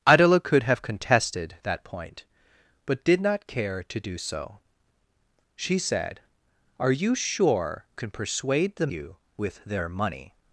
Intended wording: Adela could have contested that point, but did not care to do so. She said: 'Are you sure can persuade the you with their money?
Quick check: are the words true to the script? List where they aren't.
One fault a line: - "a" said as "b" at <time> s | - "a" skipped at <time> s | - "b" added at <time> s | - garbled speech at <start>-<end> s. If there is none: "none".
none